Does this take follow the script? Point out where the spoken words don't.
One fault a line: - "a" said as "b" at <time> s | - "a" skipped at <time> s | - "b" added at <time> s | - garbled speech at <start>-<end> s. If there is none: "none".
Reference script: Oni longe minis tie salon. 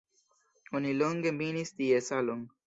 none